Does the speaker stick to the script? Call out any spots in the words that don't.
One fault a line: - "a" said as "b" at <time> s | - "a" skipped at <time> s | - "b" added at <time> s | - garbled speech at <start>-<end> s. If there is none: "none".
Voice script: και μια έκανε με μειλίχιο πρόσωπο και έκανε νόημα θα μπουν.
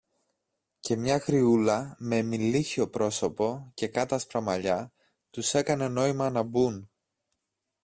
- "έκανε" said as "γριούλα" at 1.2 s
- "κάτασπρα μαλλιά τους" added at 3.9 s
- "θα" said as "να" at 6.3 s